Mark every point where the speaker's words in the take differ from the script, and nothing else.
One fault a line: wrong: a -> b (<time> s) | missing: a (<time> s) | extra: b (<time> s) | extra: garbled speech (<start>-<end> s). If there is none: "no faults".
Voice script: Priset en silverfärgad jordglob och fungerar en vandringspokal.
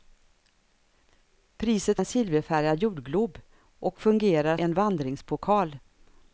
no faults